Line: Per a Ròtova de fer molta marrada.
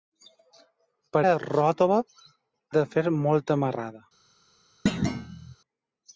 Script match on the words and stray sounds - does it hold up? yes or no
no